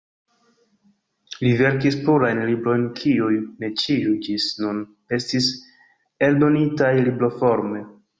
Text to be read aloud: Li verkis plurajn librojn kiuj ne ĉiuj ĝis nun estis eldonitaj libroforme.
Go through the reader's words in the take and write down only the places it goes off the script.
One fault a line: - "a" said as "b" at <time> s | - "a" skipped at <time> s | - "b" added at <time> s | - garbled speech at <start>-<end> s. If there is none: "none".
none